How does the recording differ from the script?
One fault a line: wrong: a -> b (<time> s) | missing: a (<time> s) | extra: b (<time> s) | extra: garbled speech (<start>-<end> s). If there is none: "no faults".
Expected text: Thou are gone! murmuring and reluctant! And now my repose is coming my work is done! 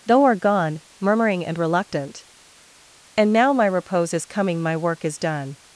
wrong: Thou -> Though (0.0 s)